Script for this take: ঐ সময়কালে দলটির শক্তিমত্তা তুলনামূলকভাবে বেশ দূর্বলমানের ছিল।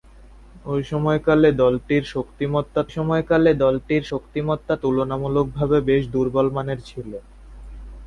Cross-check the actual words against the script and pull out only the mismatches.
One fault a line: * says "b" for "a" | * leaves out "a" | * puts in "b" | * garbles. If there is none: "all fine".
* puts in "সময়কালে দলটির শক্তিমত্তা"